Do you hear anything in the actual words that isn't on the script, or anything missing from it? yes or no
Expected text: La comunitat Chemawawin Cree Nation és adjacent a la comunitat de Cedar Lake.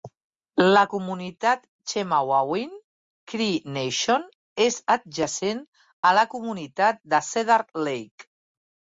no